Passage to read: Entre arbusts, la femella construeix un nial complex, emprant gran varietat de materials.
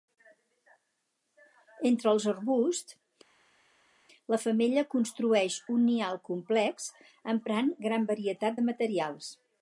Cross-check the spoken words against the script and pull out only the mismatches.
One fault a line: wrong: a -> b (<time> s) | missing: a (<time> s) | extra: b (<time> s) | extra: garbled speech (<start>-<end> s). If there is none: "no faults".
extra: els (2.1 s)